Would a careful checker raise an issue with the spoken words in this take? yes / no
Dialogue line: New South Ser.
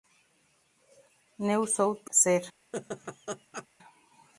no